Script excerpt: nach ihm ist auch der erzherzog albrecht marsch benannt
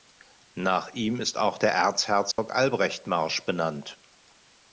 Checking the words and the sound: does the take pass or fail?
fail